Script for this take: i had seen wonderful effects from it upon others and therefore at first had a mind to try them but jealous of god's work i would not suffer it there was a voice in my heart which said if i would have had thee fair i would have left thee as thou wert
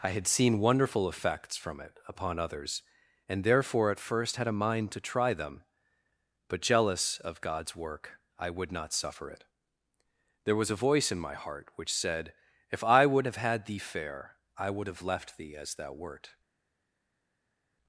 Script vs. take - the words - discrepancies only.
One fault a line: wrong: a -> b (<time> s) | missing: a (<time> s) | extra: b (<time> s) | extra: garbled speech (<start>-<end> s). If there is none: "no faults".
no faults